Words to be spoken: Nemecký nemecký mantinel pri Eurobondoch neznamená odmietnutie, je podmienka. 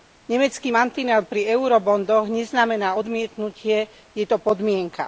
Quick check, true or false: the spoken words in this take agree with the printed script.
false